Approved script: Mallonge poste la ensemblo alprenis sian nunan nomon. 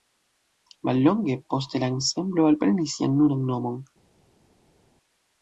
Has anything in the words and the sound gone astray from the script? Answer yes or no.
no